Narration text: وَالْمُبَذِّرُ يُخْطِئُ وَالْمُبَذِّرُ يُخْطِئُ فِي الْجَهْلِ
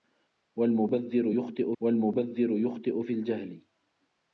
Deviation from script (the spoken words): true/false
false